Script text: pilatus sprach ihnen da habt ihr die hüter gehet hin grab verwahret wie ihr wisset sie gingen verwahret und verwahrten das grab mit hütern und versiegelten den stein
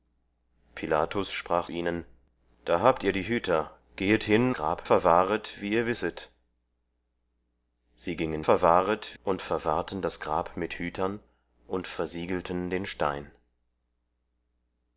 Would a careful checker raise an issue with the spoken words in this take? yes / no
no